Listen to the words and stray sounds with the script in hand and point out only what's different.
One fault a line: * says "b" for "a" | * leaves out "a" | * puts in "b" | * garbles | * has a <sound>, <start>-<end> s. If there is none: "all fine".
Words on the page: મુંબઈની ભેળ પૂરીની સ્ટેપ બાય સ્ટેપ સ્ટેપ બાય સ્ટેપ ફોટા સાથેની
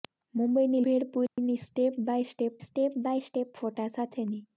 * has a dropout, 1.3-1.4 s